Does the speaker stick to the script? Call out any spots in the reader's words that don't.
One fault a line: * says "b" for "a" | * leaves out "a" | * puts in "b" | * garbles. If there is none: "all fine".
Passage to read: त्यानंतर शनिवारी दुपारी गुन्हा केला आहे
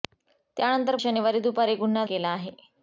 all fine